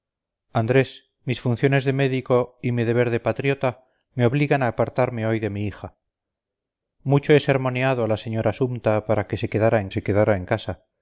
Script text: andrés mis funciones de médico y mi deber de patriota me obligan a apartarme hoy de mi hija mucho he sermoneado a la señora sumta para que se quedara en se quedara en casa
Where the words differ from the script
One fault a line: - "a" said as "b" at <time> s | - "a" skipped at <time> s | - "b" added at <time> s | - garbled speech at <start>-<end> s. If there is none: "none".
none